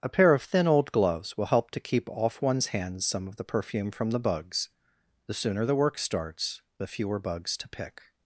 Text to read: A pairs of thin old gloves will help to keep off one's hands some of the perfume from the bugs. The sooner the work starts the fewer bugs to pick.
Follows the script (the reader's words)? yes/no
no